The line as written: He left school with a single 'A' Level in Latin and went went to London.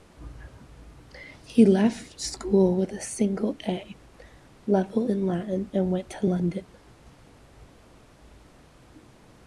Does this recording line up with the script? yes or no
no